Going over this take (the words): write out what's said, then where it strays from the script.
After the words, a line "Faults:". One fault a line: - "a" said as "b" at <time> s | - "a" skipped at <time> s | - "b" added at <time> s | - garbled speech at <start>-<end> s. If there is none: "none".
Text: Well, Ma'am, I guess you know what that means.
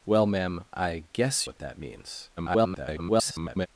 Well, Ma'am, I guess what that means. [garbled]
Faults:
- "you know" skipped at 1.5 s
- garbled speech at 2.4-3.7 s